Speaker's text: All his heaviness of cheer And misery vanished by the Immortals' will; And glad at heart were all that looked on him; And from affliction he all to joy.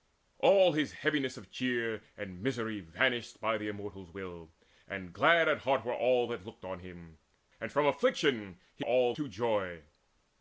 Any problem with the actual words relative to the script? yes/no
no